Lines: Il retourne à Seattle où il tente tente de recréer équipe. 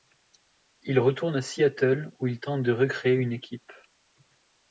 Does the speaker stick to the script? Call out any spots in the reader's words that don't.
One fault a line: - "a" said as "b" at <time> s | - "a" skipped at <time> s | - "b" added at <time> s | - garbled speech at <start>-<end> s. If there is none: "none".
- "tente" skipped at 2.6 s
- "une" added at 3.1 s